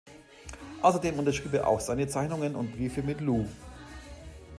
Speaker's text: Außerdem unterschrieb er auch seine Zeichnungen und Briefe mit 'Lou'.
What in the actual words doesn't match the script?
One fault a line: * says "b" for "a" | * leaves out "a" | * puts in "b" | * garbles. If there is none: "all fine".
all fine